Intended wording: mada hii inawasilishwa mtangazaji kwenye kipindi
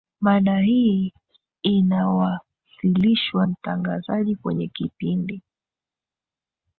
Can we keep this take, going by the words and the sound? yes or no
yes